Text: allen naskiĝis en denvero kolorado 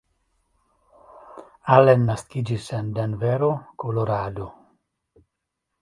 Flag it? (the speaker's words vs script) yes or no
no